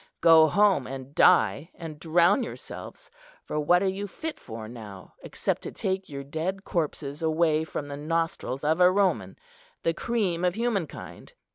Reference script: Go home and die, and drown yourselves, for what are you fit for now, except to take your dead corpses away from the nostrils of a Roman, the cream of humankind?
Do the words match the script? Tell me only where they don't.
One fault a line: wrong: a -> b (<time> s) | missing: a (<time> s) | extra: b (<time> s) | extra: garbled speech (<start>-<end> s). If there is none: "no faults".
no faults